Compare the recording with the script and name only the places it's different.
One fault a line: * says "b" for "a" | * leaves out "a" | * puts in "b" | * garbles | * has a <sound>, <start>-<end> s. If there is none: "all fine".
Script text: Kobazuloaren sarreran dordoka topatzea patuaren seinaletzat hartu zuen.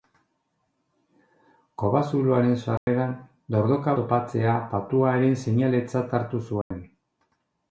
* has a dropout, 2.8-2.9 s
* has a dropout, 6.6-6.7 s